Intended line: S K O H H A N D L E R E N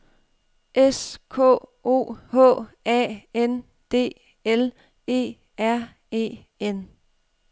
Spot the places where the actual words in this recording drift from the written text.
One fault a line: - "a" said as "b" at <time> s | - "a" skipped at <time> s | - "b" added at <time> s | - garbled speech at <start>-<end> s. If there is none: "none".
- "H" skipped at 2.7 s